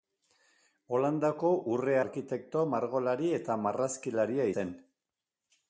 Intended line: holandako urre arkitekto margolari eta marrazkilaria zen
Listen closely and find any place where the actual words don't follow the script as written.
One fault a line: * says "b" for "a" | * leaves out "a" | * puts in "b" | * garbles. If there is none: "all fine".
all fine